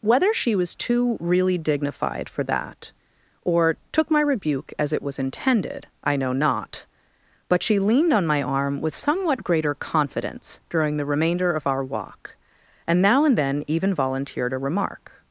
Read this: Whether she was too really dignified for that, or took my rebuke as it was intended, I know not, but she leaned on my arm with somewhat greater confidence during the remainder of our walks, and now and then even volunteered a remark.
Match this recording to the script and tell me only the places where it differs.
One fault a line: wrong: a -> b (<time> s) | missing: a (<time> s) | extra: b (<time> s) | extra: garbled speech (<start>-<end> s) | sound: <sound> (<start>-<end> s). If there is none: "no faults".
wrong: walks -> walk (11.8 s)